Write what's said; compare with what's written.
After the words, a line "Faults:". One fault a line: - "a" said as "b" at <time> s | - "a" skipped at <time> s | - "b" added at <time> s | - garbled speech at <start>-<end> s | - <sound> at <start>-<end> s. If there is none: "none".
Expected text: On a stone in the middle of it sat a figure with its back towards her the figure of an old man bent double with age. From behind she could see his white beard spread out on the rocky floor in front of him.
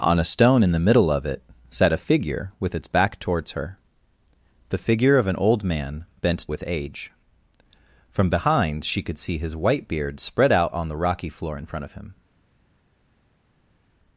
On a stone in the middle of it sat a figure with its back towards her the figure of an old man bent with age. From behind she could see his white beard spread out on the rocky floor in front of him.
Faults:
- "double" skipped at 6.5 s